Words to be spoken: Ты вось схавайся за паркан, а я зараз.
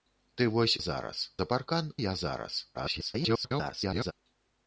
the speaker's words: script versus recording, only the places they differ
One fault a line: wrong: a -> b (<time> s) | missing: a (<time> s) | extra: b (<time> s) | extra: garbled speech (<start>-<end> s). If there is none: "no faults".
wrong: схавайся -> зараз (0.8 s)
missing: а (1.9 s)
extra: garbled speech (2.7-4.1 s)